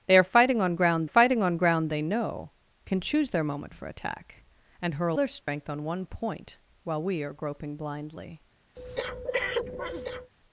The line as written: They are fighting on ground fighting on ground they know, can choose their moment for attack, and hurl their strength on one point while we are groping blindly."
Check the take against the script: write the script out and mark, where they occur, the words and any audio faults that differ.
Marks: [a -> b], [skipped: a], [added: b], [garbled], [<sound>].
They are fighting on ground fighting on ground they know, can choose their moment for attack, and hurl their strength [dropout] on one point while we are groping blindly." [breath]